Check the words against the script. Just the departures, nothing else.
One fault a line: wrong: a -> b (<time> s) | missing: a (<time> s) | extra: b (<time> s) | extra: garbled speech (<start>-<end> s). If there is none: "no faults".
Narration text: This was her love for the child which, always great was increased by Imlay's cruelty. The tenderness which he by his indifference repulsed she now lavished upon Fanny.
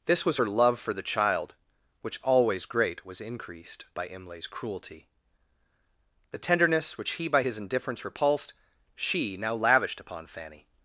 no faults